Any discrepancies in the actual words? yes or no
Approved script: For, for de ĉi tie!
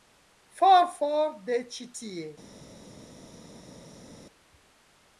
no